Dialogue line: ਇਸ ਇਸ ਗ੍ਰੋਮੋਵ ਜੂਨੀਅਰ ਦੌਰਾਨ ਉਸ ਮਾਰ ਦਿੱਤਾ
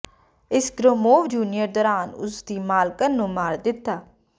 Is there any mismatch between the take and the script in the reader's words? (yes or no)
yes